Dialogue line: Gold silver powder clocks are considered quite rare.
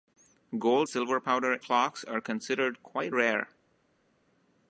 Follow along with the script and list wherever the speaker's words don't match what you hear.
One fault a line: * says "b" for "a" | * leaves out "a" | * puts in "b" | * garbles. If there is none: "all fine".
all fine